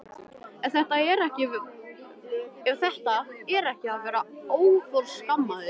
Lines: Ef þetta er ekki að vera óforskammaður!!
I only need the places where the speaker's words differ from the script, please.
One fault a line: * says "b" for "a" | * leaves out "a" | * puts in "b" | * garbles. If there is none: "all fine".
all fine